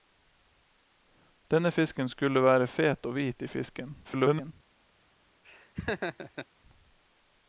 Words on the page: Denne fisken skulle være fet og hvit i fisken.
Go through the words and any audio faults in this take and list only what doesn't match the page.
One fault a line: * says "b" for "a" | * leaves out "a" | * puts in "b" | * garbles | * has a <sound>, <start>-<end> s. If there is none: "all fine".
* garbles
* has a laugh, 5.4-6.5 s